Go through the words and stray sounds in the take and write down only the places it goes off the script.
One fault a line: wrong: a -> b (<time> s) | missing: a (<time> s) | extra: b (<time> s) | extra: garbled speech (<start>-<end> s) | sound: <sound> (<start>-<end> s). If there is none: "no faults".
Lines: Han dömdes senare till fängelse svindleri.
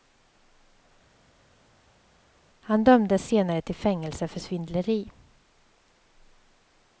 extra: för (4.3 s)